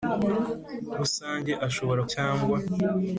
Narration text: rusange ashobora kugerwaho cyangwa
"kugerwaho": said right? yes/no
no